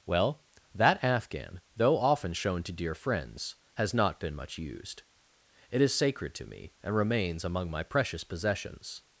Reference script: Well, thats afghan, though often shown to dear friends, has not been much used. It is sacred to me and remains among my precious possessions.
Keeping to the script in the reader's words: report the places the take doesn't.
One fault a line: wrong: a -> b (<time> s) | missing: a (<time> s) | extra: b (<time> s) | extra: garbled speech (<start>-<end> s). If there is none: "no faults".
wrong: thats -> that (0.7 s)